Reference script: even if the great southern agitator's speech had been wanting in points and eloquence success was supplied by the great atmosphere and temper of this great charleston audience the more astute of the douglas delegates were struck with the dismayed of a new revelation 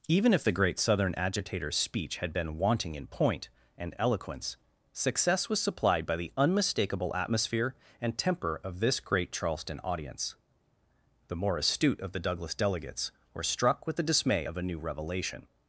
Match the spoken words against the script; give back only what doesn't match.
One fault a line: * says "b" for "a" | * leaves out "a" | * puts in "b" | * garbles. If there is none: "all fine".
* says "point" for "points"
* says "unmistakable" for "great"
* says "dismay" for "dismayed"